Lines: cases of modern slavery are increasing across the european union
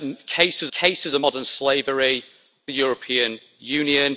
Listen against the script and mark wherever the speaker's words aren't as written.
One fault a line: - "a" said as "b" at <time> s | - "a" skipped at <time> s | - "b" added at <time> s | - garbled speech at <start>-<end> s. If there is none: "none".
- "cases" added at 0.7 s
- "are increasing across" skipped at 2.2 s